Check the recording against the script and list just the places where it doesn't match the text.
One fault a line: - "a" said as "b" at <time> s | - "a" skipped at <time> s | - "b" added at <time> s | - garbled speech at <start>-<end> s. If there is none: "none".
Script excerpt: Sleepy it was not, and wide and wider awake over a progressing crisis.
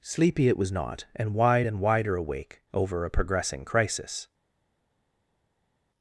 none